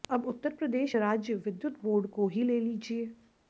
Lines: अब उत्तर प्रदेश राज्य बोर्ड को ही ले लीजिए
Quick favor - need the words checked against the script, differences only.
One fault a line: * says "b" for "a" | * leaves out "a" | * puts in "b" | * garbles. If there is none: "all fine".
* puts in "विद्युत"